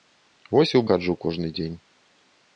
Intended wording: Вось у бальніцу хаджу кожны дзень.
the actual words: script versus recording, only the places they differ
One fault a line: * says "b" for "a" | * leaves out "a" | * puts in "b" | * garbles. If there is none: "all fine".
* leaves out "бальніцу"